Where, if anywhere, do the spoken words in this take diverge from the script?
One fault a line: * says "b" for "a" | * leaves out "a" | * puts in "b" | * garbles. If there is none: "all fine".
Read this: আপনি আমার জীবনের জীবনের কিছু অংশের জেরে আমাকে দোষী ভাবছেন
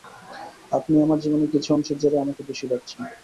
* leaves out "জীবনের"